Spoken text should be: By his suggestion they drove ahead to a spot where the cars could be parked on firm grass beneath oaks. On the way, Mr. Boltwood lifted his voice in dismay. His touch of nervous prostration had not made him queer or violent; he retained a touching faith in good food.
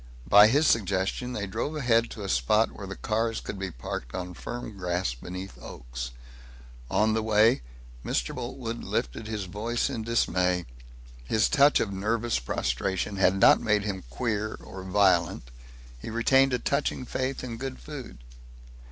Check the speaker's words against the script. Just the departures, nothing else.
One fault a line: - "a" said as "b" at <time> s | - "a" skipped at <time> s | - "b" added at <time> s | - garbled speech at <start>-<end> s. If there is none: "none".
none